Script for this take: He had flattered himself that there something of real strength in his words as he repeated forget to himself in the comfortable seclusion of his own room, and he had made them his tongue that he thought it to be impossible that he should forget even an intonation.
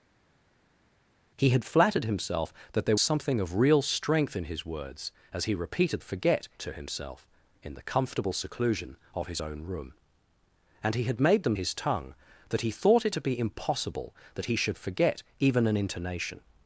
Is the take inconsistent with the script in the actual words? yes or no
no